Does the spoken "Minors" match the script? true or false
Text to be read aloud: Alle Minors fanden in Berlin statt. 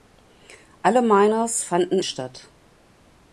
true